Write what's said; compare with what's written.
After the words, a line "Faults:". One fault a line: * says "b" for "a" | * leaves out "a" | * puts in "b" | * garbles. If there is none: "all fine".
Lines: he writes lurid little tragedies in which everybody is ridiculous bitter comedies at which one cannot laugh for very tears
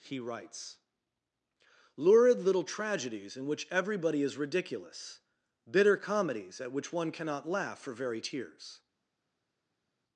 he writes lurid little tragedies in which everybody is ridiculous bitter comedies at which one cannot laugh for very tears
Faults:
all fine